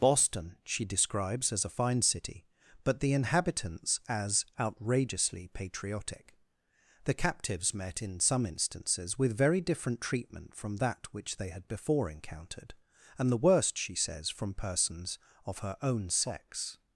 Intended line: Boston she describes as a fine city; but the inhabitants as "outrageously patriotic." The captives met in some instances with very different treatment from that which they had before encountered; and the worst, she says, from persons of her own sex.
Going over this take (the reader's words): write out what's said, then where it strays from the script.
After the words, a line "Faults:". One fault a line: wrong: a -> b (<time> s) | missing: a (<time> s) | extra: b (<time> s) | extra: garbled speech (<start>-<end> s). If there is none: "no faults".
Boston she describes as a fine city; but the inhabitants as "outrageously patriotic." The captives met in some instances with very different treatment from that which they had before encountered; and the worst, she says, from persons of her own sex.
Faults:
no faults